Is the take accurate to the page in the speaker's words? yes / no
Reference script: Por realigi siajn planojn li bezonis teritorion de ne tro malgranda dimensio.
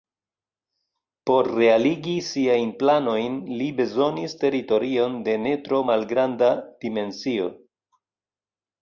yes